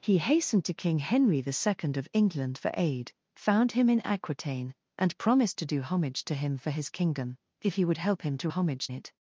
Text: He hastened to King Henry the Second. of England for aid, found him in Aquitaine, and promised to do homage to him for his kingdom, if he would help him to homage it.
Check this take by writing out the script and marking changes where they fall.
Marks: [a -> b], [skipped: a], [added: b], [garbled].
He hastened to King Henry the Second. of England for aid, found him in Aquitaine, and promised to do homage to him for his kingdom, if he would help him to homage it.